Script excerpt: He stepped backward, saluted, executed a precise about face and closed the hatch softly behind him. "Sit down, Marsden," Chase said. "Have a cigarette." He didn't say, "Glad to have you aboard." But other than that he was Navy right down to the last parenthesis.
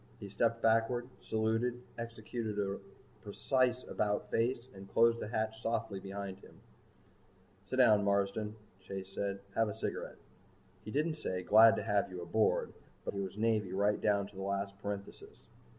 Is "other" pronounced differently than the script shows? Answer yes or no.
yes